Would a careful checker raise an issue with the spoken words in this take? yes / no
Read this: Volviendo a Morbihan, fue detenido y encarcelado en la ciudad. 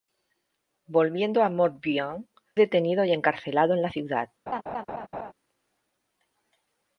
yes